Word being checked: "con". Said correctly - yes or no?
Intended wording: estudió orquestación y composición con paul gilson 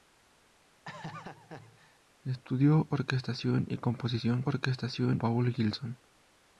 no